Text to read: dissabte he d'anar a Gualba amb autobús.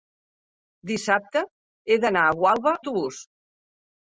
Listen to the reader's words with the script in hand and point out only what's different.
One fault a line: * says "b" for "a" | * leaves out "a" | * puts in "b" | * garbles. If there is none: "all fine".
* leaves out "amb"